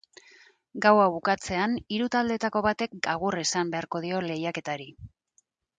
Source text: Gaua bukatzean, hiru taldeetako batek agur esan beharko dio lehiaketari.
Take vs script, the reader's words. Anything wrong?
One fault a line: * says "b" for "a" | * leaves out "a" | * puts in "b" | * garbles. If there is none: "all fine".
all fine